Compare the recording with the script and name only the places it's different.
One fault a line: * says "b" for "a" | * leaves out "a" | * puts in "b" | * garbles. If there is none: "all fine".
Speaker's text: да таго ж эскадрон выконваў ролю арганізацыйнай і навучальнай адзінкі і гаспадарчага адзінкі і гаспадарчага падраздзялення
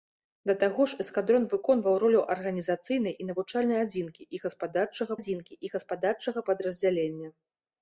all fine